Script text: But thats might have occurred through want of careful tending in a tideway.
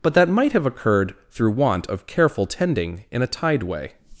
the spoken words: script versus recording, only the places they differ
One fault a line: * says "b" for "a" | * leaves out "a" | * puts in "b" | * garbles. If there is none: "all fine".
* says "that" for "thats"